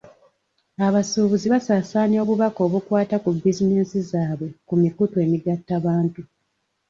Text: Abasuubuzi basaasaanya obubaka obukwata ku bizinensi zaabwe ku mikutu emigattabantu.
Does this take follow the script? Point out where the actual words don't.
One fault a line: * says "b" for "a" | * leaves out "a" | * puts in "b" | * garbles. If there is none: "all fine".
all fine